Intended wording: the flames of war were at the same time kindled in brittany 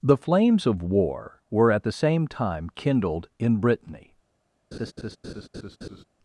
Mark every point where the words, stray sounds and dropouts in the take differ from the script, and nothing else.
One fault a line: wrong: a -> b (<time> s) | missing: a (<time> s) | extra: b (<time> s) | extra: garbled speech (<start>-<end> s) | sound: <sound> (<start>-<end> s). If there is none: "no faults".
sound: laugh (4.7-6.0 s)